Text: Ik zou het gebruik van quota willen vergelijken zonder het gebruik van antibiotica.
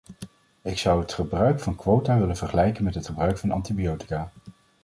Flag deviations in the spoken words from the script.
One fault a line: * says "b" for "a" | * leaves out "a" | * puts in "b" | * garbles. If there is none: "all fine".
* says "met" for "zonder"